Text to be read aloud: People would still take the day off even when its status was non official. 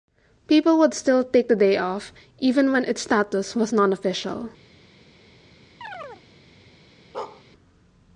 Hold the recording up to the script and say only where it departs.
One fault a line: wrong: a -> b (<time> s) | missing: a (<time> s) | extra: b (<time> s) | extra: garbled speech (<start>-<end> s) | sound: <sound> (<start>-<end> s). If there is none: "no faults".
sound: chirp (5.8-6.2 s)
sound: bark (7.1-7.4 s)